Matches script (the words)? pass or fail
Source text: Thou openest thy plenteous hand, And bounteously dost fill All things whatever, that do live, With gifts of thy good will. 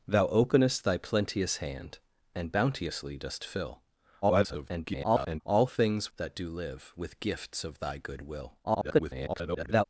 fail